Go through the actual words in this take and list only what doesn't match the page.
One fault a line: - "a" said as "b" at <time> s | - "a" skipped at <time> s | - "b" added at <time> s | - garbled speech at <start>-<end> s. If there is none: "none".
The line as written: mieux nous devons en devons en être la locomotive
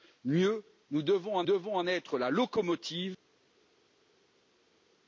none